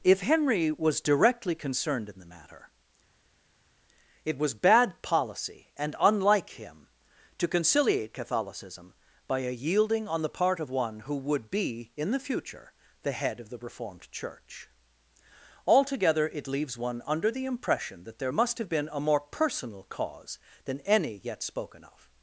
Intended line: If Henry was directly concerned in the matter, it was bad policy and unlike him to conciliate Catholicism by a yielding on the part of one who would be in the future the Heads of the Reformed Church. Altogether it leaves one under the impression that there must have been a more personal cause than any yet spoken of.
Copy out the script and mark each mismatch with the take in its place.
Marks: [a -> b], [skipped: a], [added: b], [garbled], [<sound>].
If Henry was directly concerned in the matter, it was bad policy and unlike him to conciliate Catholicism by a yielding on the part of one who would be in the future the [Heads -> Head] of the Reformed Church. Altogether it leaves one under the impression that there must have been a more personal cause than any yet spoken of.